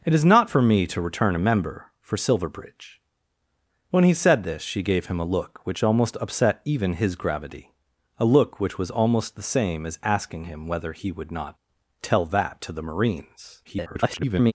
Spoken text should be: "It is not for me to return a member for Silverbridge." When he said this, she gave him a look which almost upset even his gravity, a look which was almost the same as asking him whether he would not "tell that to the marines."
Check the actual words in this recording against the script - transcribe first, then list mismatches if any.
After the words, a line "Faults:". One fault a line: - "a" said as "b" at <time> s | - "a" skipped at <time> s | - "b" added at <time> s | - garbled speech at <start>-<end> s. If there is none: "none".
"It is not for me to return a member for Silverbridge." When he said this, she gave him a look which almost upset even his gravity, a look which was almost the same as asking him whether he would not "tell that to the marines." [garbled]
Faults:
- garbled speech at 13.6-14.5 s